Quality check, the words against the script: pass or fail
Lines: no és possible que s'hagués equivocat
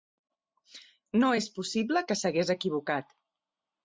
pass